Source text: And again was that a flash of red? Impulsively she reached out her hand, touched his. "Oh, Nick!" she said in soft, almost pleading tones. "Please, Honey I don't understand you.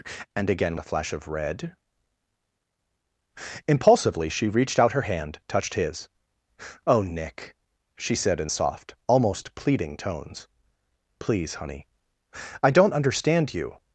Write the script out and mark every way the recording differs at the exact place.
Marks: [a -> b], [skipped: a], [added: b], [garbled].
And again [skipped: was that] a flash of red? Impulsively she reached out her hand, touched his. "Oh, Nick!" she said in soft, almost pleading tones. "Please, Honey I don't understand you.